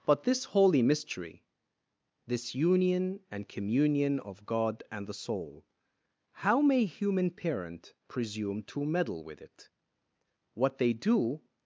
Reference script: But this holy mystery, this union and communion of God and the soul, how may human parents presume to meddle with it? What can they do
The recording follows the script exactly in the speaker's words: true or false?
false